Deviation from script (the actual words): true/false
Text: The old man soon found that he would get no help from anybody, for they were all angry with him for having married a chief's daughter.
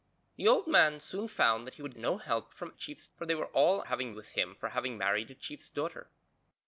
true